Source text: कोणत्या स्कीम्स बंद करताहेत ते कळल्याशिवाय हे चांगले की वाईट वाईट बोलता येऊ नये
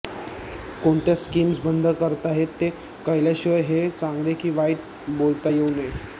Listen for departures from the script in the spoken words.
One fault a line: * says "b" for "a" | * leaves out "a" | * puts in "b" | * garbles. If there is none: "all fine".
* leaves out "वाईट"